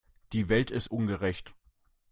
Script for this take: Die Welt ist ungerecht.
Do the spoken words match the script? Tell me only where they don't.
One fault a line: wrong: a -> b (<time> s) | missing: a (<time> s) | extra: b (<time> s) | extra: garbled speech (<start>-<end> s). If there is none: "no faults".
no faults